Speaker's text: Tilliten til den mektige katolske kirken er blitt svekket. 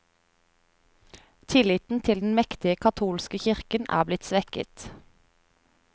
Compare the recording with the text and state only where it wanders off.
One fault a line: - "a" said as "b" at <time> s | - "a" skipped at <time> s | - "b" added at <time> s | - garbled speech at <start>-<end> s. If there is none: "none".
none